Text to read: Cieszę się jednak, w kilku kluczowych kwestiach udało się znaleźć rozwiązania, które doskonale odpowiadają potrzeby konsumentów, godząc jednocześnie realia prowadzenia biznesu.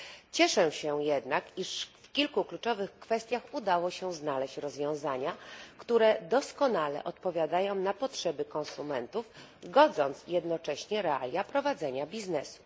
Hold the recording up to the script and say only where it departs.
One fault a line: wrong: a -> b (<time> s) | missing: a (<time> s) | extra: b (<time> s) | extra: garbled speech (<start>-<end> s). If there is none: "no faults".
extra: iż (1.6 s)
extra: na (7.8 s)